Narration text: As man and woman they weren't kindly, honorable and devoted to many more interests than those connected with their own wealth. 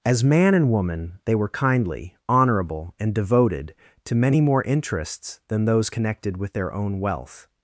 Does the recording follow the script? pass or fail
fail